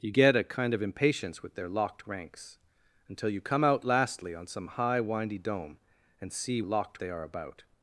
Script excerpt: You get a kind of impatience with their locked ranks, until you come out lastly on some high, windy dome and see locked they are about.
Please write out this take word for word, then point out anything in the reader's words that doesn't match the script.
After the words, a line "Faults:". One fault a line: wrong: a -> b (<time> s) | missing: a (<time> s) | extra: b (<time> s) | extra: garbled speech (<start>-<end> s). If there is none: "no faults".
You get a kind of impatience with their locked ranks, until you come out lastly on some high, windy dome and see locked they are about.
Faults:
no faults